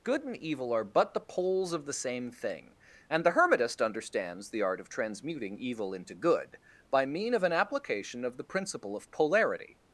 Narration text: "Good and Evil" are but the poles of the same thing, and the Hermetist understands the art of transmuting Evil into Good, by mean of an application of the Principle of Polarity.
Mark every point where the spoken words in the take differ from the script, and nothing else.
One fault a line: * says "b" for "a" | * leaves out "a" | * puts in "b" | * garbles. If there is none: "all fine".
all fine